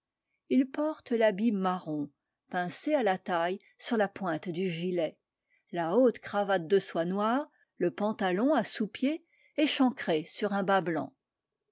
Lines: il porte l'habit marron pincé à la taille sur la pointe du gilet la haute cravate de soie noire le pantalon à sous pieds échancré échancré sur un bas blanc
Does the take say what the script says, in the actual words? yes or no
no